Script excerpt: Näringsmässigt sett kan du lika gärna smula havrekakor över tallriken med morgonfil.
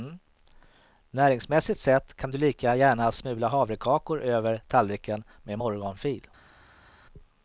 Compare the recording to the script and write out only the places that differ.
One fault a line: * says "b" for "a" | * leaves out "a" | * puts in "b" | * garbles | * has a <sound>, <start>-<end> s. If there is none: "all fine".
all fine